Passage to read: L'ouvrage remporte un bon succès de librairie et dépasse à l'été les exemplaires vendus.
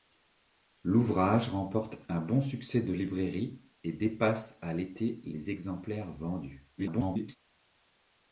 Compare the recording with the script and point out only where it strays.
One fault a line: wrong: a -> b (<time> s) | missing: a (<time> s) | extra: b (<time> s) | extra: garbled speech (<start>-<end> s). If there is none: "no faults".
extra: garbled speech (6.8-7.4 s)